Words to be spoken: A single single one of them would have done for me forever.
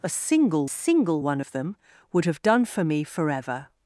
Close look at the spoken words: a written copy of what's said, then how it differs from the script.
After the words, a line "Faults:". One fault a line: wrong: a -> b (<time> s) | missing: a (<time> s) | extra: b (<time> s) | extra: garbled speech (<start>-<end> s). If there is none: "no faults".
A single single one of them would have done for me forever.
Faults:
no faults